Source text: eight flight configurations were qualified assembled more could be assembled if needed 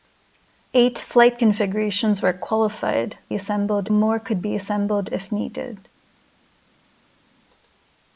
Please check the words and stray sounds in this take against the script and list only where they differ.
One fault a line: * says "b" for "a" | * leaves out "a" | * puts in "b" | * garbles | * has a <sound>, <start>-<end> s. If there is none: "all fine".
all fine